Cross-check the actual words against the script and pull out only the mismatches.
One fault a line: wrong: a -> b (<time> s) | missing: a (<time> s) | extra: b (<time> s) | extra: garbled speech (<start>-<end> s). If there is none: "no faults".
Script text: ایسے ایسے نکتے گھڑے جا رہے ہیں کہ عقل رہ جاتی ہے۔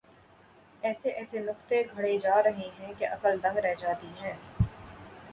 extra: دنگ (3.4 s)